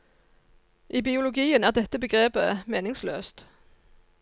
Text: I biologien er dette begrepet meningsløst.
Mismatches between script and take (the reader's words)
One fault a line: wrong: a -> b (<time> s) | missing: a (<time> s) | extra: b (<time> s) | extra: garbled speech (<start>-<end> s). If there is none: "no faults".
no faults